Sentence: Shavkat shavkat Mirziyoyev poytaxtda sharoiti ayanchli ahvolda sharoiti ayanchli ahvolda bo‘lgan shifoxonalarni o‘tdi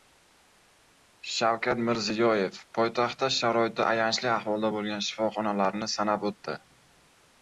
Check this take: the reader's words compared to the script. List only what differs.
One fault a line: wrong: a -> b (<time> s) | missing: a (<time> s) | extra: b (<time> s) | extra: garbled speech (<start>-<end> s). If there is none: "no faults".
missing: shavkat (1.8 s)
missing: sharoiti ayanchli ahvolda (4.7 s)
extra: sanab (6.0 s)